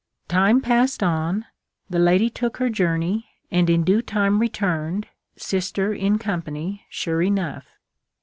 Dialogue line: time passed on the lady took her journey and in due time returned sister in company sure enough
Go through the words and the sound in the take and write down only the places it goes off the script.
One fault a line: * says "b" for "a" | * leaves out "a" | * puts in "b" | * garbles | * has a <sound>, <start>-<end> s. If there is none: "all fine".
all fine